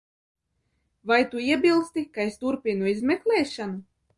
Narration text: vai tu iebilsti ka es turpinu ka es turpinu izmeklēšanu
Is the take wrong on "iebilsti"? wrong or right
right